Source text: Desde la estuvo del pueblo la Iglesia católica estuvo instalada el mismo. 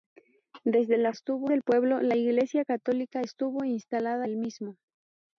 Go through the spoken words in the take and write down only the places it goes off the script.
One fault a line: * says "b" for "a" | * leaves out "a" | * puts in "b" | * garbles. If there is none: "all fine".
all fine